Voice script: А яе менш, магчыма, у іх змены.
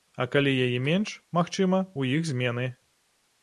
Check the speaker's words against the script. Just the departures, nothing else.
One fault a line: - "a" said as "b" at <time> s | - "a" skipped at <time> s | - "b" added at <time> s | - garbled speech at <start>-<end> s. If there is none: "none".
- "калі" added at 0.3 s